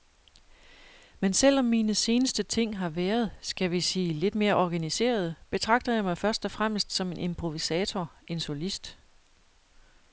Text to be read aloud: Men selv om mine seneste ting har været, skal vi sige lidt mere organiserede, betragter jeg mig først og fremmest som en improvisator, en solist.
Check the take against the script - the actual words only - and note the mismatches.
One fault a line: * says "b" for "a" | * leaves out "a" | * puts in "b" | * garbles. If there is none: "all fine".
all fine